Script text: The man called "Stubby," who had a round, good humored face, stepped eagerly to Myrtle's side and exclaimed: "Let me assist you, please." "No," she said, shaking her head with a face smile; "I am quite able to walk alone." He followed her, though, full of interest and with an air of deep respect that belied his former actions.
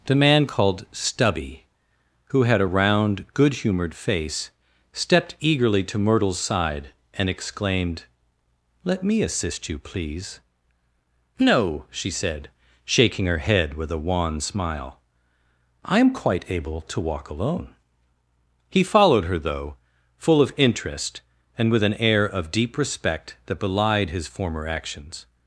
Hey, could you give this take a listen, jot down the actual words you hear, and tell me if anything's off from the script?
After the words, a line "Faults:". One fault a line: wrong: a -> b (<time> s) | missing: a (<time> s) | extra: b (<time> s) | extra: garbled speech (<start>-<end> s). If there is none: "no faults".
The man called "Stubby," who had a round, good humored face, stepped eagerly to Myrtle's side and exclaimed: "Let me assist you, please." "No," she said, shaking her head with a wan smile; "I am quite able to walk alone." He followed her, though, full of interest and with an air of deep respect that belied his former actions.
Faults:
wrong: face -> wan (14.0 s)